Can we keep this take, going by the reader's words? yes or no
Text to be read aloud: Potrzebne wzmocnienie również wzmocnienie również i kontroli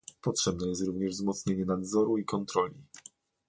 no